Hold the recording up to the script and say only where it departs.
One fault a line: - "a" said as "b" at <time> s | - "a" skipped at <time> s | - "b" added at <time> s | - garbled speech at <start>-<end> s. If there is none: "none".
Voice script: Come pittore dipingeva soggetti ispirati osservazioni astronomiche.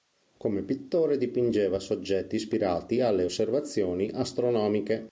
- "alle" added at 3.0 s